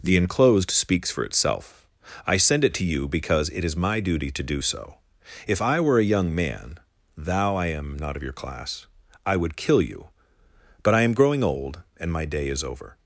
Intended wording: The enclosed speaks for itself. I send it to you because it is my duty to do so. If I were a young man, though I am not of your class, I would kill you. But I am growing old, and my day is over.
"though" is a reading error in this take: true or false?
true